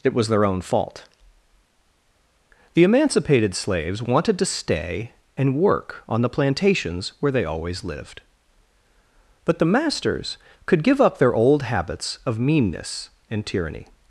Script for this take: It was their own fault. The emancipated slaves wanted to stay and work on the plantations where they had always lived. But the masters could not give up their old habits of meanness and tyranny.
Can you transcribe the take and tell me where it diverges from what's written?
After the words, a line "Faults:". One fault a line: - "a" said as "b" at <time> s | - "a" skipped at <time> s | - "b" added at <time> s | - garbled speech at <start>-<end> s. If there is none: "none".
It was their own fault. The emancipated slaves wanted to stay and work on the plantations where they always lived. But the masters could give up their old habits of meanness and tyranny.
Faults:
- "had" skipped at 7.5 s
- "not" skipped at 10.8 s